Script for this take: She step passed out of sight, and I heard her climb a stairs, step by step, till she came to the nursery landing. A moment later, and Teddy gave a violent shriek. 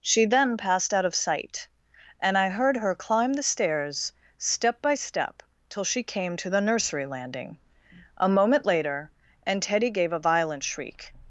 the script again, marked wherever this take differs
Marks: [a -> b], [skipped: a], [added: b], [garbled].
She [step -> then] passed out of sight, and I heard her climb [a -> the] stairs, step by step, till she came to the nursery landing. A moment later, and Teddy gave a violent shriek.